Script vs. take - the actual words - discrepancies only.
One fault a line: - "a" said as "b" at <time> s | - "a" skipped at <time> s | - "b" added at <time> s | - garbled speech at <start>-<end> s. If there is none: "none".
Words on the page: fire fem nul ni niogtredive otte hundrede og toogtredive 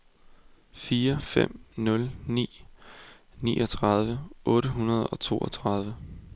none